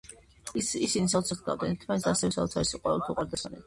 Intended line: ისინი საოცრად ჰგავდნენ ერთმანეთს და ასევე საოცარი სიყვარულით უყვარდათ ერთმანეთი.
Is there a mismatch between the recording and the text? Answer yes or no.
no